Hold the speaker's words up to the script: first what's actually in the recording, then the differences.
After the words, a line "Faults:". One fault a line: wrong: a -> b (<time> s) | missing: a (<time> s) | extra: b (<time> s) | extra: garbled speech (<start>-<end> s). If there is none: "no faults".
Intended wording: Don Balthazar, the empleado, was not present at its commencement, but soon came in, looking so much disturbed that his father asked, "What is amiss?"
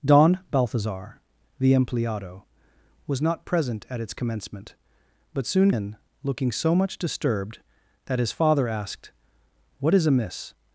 Don Balthazar, the empleado, was not present at its commencement, but soon in, looking so much disturbed that his father asked, "What is amiss?"
Faults:
missing: came (5.7 s)